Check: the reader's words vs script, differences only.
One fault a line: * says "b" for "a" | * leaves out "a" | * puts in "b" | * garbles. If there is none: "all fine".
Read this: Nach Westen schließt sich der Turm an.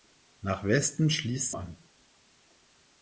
* leaves out "sich der Turm"